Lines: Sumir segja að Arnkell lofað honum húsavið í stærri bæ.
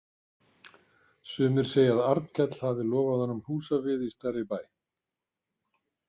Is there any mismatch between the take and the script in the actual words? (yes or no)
yes